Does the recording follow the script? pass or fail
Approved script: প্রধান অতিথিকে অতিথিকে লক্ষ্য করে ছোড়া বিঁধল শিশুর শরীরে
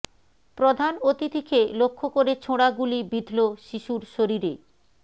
fail